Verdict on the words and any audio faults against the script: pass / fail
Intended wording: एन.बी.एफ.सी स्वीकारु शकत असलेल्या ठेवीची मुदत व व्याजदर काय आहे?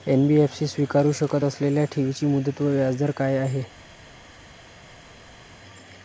pass